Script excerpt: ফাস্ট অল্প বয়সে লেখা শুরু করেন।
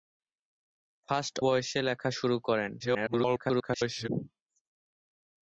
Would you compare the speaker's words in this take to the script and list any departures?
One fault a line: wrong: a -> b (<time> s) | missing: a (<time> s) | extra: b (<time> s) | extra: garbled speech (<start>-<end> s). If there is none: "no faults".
missing: অল্প (1.4 s)
extra: garbled speech (2.8-4.1 s)